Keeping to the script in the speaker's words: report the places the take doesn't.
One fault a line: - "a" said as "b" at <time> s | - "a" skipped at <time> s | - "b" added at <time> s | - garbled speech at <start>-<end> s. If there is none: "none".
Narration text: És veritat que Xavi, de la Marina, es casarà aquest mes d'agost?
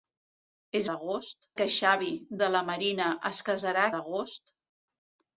- "veritat" said as "d'agost" at 0.9 s
- "aquest mes" skipped at 3.9 s